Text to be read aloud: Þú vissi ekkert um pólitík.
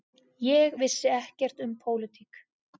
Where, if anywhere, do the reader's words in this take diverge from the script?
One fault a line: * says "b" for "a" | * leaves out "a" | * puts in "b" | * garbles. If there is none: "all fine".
* says "Ég" for "Þú"